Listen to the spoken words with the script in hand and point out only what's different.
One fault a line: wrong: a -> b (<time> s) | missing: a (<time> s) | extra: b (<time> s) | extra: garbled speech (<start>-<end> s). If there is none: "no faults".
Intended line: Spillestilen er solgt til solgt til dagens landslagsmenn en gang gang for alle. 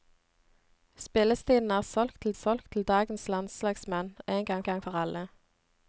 no faults